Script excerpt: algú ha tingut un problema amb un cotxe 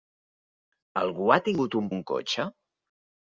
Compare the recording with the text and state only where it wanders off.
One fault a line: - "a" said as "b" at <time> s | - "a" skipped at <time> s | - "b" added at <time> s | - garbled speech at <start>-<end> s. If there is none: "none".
- "problema amb" skipped at 1.9 s